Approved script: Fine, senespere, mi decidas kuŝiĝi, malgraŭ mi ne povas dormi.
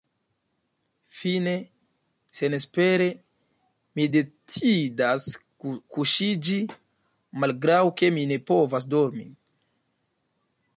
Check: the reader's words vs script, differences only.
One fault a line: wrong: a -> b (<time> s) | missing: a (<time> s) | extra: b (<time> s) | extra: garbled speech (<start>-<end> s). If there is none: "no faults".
extra: ke (8.0 s)